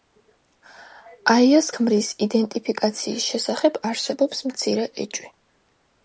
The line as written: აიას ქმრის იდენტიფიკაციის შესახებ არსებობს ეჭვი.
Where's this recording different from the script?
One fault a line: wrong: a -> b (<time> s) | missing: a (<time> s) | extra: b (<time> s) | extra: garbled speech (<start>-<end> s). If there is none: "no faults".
extra: მცირე (4.5 s)